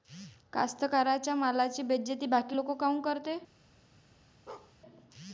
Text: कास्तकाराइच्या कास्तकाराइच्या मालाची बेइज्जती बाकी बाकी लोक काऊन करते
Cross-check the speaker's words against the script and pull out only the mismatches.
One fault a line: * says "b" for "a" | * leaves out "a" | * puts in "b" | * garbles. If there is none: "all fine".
* leaves out "कास्तकाराइच्या"
* leaves out "बाकी"